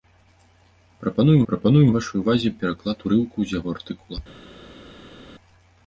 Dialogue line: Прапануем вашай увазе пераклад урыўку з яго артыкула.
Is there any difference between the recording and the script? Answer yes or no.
yes